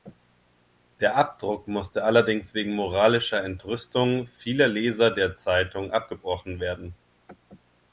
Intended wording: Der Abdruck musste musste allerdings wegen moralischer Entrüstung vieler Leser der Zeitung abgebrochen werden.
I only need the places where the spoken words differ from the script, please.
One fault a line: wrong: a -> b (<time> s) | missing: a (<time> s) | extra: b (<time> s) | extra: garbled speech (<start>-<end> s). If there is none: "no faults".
missing: musste (2.0 s)